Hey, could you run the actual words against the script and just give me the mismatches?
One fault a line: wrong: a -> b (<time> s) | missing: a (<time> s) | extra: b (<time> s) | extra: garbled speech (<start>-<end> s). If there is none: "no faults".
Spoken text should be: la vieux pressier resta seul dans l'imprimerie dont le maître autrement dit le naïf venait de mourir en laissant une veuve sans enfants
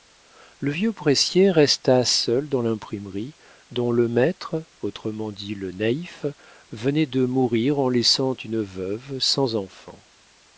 wrong: la -> le (0.6 s)